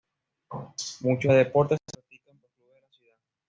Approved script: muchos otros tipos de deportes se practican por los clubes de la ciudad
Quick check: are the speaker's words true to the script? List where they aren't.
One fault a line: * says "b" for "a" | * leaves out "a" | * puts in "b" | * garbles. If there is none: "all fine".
* leaves out "otros tipos"
* leaves out "por"